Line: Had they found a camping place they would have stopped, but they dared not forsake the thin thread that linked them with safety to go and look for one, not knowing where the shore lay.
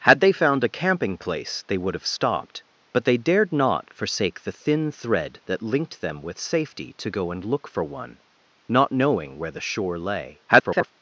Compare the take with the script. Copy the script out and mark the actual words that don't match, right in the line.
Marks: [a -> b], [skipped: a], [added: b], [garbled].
Had they found a camping place they would have stopped, but they dared not forsake the thin thread that linked them with safety to go and look for one, not knowing where the shore lay. [garbled]